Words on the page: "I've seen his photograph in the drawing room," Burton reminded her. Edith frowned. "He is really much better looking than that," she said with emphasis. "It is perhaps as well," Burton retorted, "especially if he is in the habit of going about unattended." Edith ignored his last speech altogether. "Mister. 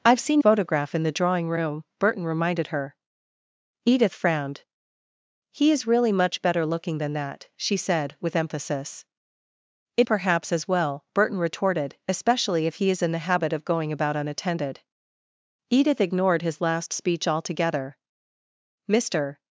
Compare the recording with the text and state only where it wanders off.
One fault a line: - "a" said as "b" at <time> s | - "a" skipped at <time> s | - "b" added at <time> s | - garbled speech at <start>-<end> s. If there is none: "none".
- "his" skipped at 0.4 s
- "is" skipped at 10.1 s